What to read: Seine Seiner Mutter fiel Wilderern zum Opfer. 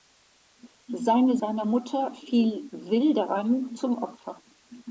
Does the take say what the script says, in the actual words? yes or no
yes